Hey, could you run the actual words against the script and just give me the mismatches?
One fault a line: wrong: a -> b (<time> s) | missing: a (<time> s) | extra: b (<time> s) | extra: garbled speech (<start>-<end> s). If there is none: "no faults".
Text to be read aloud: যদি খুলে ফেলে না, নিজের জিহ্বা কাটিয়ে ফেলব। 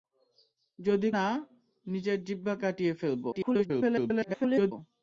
missing: খুলে ফেলে (1.1 s)
extra: garbled speech (3.3-4.7 s)